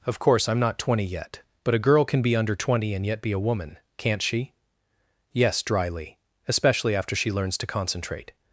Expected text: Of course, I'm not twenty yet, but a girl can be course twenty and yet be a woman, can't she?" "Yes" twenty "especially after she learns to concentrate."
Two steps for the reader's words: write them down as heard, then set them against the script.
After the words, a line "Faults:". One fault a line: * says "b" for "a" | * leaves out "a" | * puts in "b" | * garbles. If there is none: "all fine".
Of course, I'm not twenty yet, but a girl can be under twenty and yet be a woman, can't she?" "Yes" dryly "especially after she learns to concentrate."
Faults:
* says "under" for "course"
* says "dryly" for "twenty"